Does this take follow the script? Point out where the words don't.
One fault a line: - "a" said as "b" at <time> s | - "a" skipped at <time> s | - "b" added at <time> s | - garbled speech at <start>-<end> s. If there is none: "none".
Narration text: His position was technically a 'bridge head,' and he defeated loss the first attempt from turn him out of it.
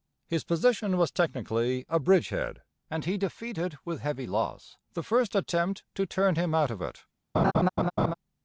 - "with heavy" added at 3.8 s
- "from" said as "to" at 6.0 s